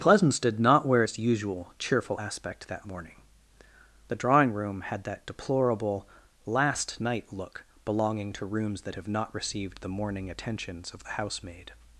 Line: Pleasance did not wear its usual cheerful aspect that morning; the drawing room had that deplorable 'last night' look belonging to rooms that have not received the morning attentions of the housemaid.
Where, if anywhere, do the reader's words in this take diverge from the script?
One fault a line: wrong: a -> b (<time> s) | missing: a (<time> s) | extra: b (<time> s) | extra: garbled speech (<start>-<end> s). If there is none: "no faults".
no faults